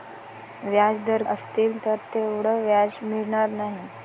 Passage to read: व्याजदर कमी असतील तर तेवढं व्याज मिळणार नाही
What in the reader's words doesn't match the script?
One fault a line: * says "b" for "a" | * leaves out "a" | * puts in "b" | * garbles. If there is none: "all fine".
* leaves out "कमी"